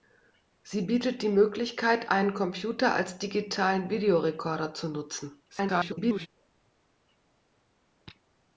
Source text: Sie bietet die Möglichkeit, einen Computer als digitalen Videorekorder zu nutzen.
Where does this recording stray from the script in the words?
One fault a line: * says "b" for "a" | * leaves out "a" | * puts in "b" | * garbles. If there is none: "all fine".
* garbles